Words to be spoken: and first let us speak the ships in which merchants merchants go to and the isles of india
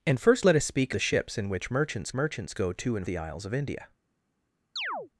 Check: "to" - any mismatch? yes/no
no